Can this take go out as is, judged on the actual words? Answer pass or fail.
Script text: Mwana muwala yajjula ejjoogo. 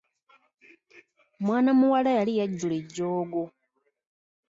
fail